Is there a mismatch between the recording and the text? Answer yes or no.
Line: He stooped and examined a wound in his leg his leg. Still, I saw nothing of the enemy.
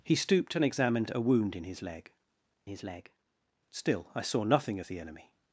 no